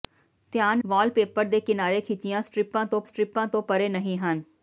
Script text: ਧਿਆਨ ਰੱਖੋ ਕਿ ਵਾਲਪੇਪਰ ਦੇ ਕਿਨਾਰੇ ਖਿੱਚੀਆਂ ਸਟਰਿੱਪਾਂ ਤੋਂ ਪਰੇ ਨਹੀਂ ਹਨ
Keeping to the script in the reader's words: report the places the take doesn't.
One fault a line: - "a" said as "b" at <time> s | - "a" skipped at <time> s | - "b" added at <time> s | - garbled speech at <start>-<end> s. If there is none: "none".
- "ਰੱਖੋ ਕਿ" skipped at 0.8 s
- "ਸਟਰਿੱਪਾਂ ਤੋਂ" added at 3.0 s